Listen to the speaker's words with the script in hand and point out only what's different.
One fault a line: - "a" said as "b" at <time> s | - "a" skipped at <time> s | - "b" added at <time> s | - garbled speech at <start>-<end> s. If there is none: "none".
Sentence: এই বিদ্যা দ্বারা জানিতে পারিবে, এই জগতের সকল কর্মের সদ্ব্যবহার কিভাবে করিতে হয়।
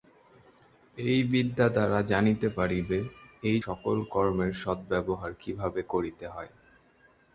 - "জগতের" skipped at 3.6 s